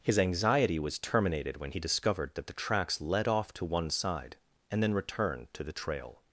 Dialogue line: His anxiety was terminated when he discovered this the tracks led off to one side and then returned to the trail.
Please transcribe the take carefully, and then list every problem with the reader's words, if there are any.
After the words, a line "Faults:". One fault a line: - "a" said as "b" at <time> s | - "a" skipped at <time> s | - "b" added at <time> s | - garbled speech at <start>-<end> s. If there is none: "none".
His anxiety was terminated when he discovered that the tracks led off to one side and then returned to the trail.
Faults:
- "this" said as "that" at 2.3 s